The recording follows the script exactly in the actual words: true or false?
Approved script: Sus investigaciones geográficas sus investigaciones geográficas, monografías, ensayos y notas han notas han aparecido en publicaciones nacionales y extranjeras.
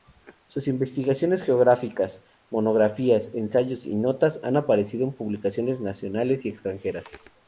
false